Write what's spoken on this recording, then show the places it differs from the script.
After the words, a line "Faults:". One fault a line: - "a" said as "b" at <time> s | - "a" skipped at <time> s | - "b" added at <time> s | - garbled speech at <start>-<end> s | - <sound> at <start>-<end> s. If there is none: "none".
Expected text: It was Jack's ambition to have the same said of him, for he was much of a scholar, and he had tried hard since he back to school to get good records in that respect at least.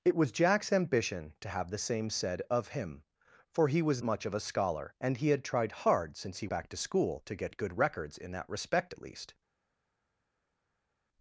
It was Jack's ambition to have the same said of him, for he was much of a scholar, and he had tried hard since he back to school to get good records in that respect at least.
Faults:
none